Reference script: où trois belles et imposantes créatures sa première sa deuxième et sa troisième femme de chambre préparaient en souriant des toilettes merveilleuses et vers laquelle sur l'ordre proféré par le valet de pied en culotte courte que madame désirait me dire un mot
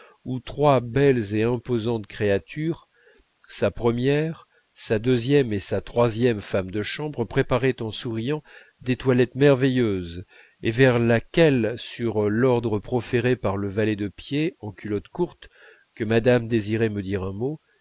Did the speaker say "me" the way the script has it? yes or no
yes